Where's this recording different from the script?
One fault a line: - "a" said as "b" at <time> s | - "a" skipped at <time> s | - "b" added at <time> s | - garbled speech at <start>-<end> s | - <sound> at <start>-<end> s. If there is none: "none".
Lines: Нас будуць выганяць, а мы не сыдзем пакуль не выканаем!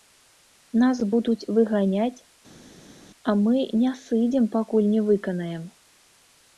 none